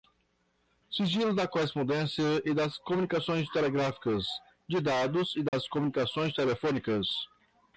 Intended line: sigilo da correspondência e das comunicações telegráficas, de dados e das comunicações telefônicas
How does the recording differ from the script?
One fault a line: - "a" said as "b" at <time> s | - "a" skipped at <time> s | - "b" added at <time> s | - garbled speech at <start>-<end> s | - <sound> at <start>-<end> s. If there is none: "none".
- dropout at 5.5-5.5 s